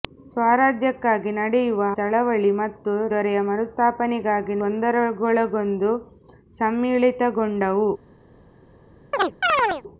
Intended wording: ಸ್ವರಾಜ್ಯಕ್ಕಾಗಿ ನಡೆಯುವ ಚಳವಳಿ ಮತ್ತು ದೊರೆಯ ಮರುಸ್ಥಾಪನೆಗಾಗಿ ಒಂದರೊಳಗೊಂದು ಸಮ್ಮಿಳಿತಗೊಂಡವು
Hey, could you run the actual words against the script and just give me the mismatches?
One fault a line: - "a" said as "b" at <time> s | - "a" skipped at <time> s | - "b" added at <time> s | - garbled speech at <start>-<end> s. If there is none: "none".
none